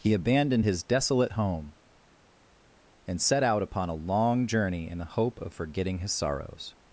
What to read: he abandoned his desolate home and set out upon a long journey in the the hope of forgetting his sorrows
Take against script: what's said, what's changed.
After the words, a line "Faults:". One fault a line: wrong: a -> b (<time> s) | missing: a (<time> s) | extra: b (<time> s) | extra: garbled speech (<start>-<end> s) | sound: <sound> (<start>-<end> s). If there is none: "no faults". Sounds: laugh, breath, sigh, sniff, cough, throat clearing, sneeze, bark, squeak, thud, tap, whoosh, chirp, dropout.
he abandoned his desolate home and set out upon a long journey in the hope of forgetting his sorrows
Faults:
missing: the (5.1 s)